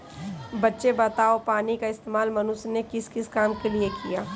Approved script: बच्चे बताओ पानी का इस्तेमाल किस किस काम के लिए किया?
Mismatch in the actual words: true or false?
true